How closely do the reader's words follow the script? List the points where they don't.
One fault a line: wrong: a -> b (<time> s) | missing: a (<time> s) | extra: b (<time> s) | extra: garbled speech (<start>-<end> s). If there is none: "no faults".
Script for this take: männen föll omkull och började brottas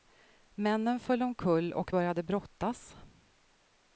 no faults